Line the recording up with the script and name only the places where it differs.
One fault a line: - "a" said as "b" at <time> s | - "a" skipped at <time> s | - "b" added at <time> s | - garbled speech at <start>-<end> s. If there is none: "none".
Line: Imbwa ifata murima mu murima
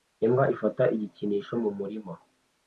- "murima" said as "igikinisho" at 1.0 s